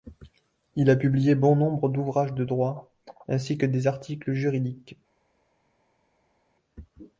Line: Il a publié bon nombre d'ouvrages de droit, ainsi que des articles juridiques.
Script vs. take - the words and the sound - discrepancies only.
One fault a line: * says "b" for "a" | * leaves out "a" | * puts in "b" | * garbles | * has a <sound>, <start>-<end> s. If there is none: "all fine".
all fine